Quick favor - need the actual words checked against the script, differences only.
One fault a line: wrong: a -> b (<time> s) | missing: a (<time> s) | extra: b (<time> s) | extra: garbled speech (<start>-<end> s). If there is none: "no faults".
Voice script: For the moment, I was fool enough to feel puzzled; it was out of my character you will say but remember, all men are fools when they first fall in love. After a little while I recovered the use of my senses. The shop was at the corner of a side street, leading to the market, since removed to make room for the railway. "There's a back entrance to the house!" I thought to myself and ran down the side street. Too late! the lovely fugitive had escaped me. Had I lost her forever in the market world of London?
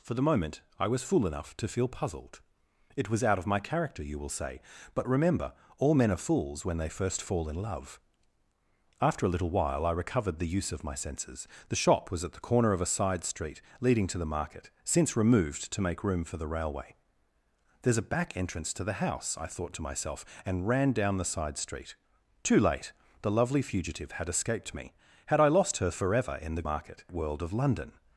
no faults